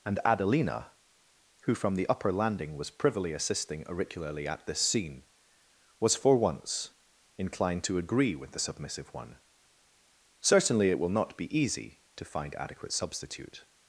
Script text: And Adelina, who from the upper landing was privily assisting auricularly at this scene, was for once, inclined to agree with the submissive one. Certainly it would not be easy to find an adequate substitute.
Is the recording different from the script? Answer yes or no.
yes